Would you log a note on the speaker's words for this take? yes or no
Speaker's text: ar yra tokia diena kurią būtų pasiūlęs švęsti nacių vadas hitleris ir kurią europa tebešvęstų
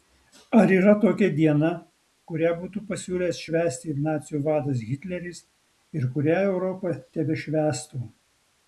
no